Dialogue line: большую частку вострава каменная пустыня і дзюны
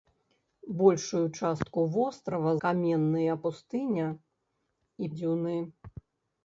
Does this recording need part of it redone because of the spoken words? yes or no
no